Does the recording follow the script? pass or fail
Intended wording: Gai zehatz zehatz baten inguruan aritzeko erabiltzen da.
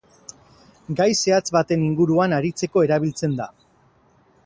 fail